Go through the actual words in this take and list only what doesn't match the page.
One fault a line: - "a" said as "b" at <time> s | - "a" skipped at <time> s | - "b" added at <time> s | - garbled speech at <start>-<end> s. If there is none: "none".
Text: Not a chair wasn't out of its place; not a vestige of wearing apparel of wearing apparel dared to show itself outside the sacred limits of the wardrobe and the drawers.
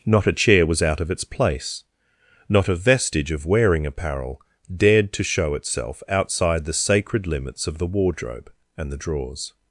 - "wasn't" said as "was" at 0.7 s
- "of wearing apparel" skipped at 4.4 s